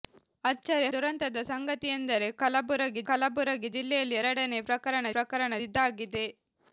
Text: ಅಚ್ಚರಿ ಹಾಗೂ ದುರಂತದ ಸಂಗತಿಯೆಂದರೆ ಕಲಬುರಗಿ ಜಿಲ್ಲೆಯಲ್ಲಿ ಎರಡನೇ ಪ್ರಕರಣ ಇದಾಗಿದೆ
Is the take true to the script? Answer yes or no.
no